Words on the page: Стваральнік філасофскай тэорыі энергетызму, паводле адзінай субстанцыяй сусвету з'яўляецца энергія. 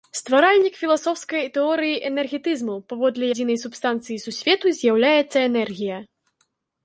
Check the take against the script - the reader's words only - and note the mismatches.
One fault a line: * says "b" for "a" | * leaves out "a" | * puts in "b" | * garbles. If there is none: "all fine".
all fine